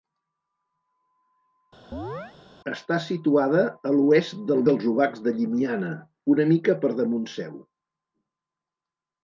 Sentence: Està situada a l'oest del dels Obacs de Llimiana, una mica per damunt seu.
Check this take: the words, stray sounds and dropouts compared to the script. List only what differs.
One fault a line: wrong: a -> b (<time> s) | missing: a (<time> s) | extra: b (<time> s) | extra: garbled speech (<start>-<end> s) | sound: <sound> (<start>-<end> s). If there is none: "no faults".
sound: chirp (1.9-2.3 s)